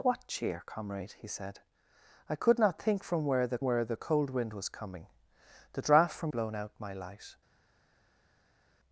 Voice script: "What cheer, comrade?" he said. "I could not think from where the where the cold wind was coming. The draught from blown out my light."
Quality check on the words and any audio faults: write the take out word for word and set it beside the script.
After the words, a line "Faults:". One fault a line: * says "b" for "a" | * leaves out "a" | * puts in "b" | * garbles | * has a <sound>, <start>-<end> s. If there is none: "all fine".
"What cheer, comrade?" he said. "I could not think from where the where the cold wind was coming. The draught from blown out my light."
Faults:
all fine